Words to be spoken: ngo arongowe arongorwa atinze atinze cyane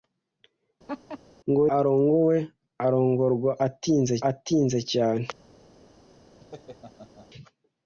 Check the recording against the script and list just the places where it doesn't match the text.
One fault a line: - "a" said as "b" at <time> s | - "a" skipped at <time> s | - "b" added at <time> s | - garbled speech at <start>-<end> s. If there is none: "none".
none